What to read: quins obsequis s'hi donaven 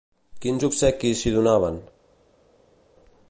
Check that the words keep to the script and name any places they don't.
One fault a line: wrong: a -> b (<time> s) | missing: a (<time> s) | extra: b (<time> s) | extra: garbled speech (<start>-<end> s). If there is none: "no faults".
no faults